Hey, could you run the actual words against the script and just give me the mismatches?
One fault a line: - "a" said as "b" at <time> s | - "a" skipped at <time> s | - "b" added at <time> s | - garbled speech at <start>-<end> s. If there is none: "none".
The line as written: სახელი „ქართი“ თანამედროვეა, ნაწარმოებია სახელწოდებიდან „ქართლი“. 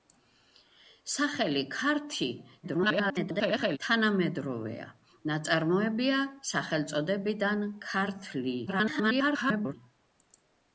- garbled speech at 2.6-3.8 s
- garbled speech at 8.7-9.7 s